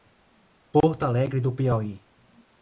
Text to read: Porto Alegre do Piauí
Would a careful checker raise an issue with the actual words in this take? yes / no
no